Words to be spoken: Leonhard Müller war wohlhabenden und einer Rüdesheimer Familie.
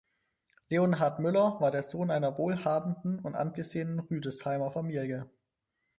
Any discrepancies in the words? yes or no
yes